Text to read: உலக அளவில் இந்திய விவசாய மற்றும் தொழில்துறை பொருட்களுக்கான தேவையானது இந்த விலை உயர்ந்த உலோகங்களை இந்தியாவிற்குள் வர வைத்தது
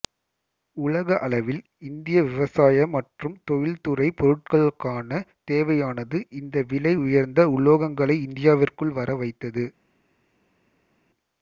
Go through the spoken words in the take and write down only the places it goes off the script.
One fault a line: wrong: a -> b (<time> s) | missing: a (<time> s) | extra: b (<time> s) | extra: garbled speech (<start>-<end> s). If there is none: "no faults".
no faults